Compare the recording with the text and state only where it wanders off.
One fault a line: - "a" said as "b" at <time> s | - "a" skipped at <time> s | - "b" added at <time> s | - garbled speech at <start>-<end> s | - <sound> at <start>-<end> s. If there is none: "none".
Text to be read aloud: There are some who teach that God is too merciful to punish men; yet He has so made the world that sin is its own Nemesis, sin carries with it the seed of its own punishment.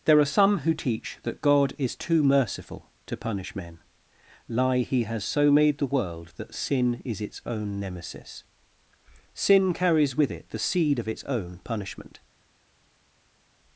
- "yet" said as "lie" at 4.5 s